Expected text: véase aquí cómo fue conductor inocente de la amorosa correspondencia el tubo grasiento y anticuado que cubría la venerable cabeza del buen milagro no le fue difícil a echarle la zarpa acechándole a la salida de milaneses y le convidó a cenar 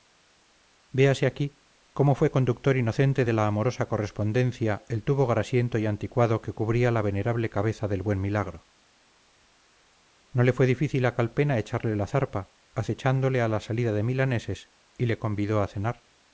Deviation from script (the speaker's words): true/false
true